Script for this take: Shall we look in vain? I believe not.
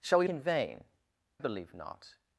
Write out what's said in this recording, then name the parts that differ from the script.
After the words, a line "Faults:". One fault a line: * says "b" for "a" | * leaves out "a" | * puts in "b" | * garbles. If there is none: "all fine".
Shall we in vain? believe not.
Faults:
* leaves out "look"
* leaves out "I"